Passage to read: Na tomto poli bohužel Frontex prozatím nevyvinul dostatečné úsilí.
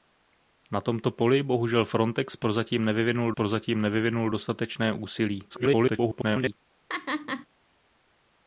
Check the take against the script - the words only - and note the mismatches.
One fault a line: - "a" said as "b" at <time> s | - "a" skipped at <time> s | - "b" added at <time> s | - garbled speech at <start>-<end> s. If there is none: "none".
- "prozatím nevyvinul" added at 3.3 s
- garbled speech at 5.5-6.5 s